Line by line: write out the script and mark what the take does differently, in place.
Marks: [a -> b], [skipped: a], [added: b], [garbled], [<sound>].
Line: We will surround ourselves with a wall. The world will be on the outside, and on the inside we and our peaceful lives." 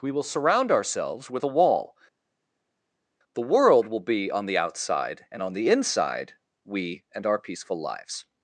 We will surround ourselves with a wall. The world will be on the outside, and on the inside we and our peaceful lives."